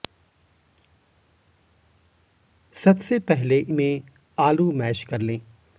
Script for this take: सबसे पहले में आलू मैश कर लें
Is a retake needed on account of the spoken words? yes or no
no